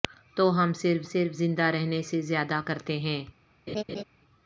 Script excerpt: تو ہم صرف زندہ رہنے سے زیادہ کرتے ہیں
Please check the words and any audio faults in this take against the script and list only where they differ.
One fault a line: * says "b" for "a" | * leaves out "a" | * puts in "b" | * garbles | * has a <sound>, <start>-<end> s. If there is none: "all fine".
* puts in "صرف"
* has a laugh, 3.7-4.0 s